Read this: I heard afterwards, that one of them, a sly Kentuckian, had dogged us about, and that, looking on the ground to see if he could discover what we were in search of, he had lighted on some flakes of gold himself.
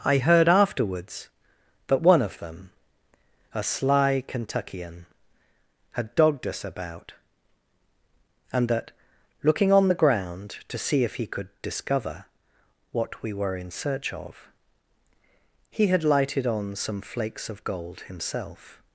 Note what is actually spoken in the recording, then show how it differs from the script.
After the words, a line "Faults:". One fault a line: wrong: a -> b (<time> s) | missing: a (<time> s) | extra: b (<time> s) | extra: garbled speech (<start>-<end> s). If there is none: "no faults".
I heard afterwards, that one of them, a sly Kentuckian, had dogged us about, and that, looking on the ground to see if he could discover what we were in search of, he had lighted on some flakes of gold himself.
Faults:
no faults